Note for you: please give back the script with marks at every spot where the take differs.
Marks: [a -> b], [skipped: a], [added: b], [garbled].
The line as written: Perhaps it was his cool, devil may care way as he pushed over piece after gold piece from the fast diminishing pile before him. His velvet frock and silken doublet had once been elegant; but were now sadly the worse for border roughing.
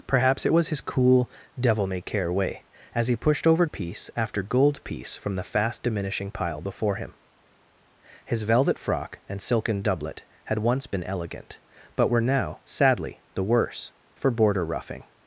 Perhaps it was his cool, devil may care way as he pushed over piece after gold piece from the fast diminishing pile before him. His velvet frock and silken doublet had once been elegant; but were now sadly the worse for border roughing.